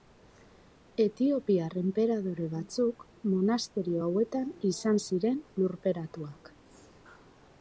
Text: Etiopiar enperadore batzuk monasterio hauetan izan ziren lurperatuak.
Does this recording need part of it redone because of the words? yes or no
no